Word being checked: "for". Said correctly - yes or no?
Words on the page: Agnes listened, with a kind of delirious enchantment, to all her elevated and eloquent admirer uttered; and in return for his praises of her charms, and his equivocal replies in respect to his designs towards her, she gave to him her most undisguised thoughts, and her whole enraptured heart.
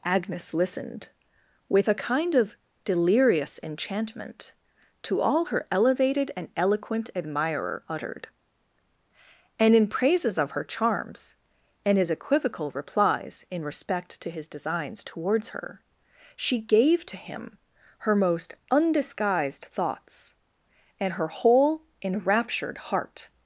no